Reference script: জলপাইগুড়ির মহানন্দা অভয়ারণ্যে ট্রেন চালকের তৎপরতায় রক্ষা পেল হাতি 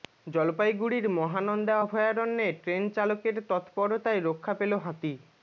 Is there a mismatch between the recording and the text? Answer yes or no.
no